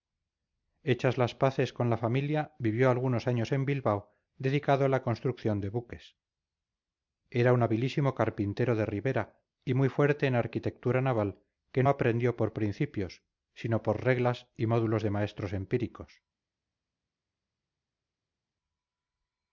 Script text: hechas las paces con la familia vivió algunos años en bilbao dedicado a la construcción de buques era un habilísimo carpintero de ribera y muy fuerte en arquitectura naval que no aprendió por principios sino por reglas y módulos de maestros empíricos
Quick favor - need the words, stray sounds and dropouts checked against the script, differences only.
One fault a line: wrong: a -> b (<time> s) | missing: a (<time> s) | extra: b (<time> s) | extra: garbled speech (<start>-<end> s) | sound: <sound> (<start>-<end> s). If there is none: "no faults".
missing: no (11.8 s)